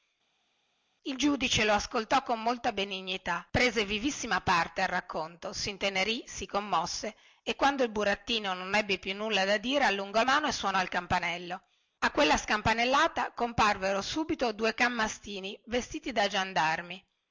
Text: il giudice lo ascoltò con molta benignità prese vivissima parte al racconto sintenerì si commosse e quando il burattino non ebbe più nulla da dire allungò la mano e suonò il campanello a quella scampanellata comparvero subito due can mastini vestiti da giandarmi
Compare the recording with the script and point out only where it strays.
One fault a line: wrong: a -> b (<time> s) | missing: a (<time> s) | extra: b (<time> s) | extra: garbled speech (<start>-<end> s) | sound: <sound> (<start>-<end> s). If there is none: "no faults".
missing: la (10.2 s)